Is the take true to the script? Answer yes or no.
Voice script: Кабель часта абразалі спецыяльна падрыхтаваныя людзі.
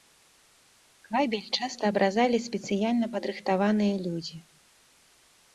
yes